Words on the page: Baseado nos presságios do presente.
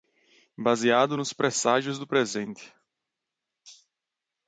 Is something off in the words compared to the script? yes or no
no